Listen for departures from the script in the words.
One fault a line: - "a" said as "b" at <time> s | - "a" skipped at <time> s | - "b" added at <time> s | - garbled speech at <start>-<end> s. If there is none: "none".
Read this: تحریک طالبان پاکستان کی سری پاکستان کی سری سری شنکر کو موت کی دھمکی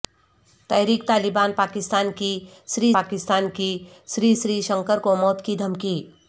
none